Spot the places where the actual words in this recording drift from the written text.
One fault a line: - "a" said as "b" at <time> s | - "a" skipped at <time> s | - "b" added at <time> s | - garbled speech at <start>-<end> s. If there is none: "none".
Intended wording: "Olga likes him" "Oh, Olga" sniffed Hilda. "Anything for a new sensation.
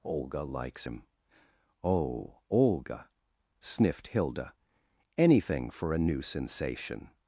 none